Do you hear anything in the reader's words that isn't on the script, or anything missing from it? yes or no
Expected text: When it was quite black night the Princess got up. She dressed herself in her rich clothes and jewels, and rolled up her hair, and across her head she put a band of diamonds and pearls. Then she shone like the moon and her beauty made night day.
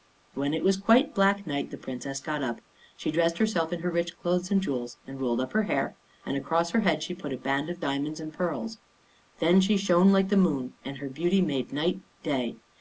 no